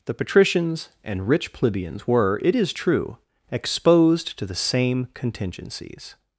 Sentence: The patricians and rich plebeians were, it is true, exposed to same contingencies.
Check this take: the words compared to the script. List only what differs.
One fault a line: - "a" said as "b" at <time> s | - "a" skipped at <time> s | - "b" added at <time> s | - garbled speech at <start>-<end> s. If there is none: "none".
- "the" added at 4.5 s